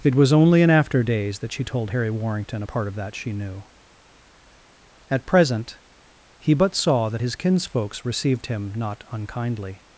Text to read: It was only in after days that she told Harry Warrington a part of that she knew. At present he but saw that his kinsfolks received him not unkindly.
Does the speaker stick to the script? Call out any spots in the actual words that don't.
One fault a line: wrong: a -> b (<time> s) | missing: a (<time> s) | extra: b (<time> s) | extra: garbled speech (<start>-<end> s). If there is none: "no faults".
no faults